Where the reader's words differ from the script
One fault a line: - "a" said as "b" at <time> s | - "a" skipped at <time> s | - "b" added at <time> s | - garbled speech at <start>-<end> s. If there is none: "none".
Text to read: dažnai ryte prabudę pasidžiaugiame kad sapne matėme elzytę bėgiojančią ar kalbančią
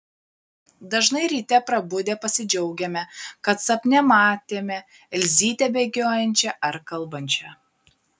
none